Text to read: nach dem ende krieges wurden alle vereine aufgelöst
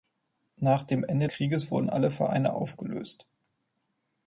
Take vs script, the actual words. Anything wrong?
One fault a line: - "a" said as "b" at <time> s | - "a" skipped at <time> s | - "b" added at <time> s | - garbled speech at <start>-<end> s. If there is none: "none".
none